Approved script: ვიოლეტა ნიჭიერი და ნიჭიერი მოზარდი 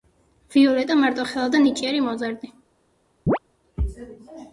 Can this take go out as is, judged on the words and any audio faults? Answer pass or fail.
fail